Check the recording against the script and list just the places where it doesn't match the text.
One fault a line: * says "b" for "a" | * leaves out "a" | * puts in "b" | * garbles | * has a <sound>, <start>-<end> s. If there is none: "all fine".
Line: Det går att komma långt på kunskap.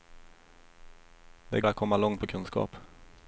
* leaves out "går"